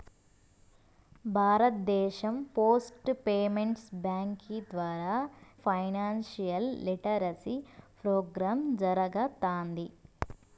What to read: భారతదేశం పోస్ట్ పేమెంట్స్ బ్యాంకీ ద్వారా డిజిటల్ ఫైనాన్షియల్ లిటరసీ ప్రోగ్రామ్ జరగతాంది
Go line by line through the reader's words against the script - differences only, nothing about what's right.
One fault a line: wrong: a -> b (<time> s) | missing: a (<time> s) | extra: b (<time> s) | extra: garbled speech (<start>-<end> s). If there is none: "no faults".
missing: డిజిటల్ (5.1 s)